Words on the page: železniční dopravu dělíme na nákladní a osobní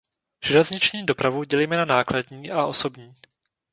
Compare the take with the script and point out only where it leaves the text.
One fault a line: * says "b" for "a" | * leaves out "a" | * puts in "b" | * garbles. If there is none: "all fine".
all fine